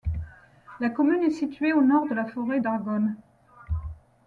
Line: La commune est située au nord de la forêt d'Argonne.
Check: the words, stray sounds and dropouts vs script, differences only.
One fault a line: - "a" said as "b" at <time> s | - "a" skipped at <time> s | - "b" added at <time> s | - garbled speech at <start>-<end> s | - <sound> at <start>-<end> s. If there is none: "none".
none